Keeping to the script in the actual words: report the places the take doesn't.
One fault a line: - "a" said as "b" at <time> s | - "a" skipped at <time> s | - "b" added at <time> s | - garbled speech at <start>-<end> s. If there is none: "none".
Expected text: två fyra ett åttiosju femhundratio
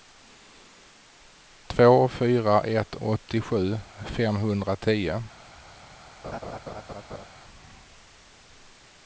none